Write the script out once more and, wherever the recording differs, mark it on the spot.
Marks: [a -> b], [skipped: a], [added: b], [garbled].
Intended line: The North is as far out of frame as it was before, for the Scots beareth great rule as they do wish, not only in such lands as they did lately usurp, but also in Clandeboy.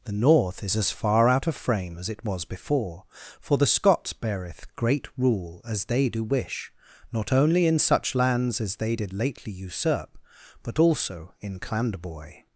The North is as far out of frame as it was before, for the Scots beareth great rule as they do wish, not only in such lands as they did lately usurp, but also in Clandeboy.